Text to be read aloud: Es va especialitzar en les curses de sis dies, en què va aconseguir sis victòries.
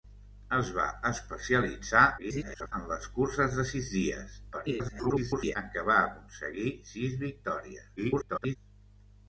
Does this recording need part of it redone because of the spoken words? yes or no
yes